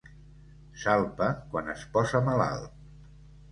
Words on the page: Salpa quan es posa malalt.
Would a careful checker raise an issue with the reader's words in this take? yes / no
no